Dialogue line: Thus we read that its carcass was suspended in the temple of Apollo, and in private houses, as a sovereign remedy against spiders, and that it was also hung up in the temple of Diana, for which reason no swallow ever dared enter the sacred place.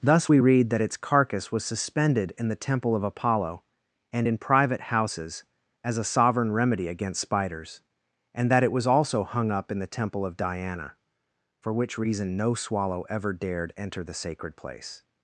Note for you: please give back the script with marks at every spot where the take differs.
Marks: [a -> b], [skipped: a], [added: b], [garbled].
Thus we read that its carcass was suspended in the temple of Apollo, and in private houses, as a sovereign remedy against spiders, and that it was also hung up in the temple of Diana, for which reason no swallow ever dared enter the sacred place.